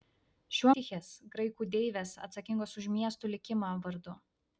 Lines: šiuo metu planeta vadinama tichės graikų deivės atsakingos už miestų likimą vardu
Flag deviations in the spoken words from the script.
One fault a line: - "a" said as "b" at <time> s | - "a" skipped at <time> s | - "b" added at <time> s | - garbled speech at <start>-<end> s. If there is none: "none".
- "metu planeta vadinama" skipped at 0.7 s